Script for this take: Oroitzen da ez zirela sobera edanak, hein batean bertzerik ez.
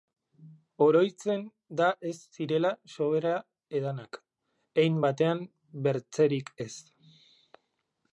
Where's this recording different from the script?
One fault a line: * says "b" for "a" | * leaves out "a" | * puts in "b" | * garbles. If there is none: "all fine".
all fine